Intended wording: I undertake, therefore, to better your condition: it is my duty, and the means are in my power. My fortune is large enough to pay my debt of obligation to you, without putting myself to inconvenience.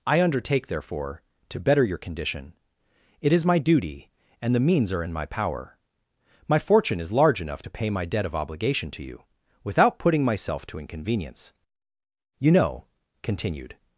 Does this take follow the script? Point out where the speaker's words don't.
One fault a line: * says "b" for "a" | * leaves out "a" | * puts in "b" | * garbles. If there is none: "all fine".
* puts in "You know continued"